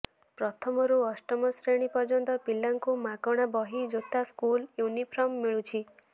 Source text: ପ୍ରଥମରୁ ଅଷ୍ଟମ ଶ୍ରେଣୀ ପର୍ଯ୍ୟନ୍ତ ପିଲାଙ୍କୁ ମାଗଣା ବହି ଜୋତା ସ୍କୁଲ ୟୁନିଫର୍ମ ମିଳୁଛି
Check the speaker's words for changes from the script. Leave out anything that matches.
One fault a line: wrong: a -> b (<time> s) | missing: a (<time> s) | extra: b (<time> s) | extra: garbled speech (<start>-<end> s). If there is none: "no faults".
no faults